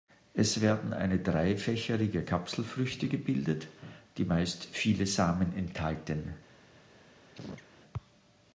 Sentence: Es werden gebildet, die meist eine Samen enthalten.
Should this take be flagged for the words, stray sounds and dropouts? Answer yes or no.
yes